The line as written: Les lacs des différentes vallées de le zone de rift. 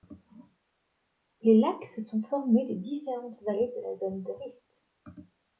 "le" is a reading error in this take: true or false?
true